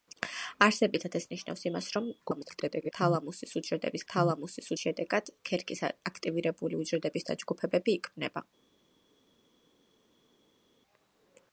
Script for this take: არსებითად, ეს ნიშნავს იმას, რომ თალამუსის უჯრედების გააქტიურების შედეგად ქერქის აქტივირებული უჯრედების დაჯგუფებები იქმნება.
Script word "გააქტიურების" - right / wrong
wrong